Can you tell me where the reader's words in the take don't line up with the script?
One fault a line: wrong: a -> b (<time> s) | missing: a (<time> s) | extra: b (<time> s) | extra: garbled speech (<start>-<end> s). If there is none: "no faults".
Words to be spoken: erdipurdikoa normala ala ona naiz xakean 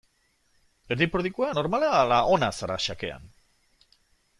wrong: naiz -> zara (2.6 s)